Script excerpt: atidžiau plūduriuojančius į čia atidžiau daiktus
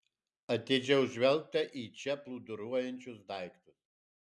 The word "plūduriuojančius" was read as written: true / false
false